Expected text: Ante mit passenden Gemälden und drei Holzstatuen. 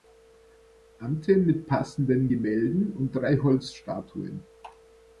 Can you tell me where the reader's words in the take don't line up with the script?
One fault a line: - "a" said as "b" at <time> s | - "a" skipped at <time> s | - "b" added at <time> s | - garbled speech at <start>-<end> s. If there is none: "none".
none